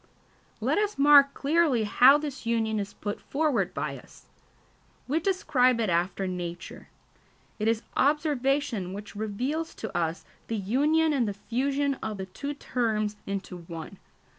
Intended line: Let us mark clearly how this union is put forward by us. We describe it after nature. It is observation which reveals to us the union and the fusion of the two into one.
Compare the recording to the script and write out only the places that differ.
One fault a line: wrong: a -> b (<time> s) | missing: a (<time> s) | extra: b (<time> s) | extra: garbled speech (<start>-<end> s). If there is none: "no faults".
extra: terms (12.5 s)